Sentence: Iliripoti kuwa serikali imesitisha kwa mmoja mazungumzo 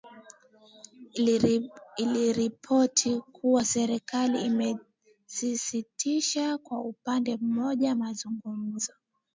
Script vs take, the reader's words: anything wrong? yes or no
yes